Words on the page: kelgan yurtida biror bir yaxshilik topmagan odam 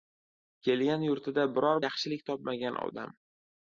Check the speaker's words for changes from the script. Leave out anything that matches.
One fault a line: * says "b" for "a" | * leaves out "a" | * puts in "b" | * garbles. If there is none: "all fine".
* leaves out "bir"